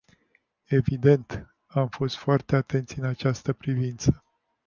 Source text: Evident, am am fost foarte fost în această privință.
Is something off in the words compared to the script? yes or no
yes